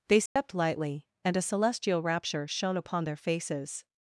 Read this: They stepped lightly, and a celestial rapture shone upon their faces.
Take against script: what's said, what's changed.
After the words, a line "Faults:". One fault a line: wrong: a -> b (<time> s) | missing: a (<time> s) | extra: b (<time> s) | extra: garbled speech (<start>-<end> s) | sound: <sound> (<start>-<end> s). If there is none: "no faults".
They stepped lightly, and a celestial rapture shone upon their faces.
Faults:
sound: dropout (0.3-0.4 s)